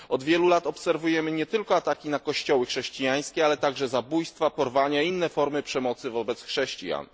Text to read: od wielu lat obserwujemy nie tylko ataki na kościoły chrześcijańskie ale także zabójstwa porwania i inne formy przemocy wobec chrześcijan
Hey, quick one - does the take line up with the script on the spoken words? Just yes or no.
yes